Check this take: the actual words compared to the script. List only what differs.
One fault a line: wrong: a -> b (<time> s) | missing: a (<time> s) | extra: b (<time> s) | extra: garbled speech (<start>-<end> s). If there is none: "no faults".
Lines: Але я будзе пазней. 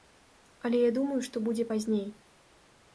extra: думаю што (1.0 s)